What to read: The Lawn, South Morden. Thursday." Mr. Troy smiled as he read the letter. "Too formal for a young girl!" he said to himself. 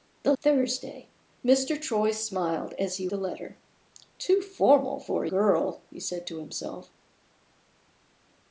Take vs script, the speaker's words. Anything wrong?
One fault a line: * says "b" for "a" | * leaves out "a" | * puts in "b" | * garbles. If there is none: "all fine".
* leaves out "Lawn South Morden"
* leaves out "read"
* leaves out "young"